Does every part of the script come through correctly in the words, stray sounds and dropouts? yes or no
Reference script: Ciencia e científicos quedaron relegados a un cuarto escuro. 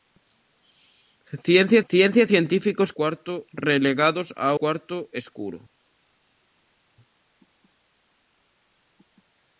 no